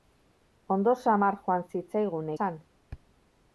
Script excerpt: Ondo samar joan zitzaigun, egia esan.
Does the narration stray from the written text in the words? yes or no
yes